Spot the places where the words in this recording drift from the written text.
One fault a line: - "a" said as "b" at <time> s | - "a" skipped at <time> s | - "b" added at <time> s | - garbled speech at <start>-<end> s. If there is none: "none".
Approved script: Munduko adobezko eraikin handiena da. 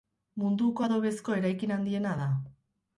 none